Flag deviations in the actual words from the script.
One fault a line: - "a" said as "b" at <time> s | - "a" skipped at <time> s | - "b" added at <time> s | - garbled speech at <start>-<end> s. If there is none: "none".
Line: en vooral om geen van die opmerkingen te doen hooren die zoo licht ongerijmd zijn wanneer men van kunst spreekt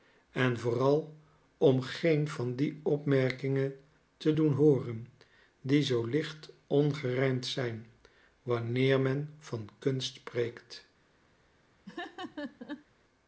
none